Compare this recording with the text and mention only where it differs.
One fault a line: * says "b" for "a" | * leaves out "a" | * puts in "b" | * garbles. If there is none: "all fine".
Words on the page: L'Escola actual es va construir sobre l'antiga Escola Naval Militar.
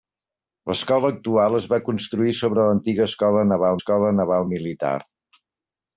* puts in "Escola Naval"